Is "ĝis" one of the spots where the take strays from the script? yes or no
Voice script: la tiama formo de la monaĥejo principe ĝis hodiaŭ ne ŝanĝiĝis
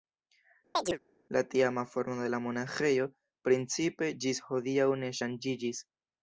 no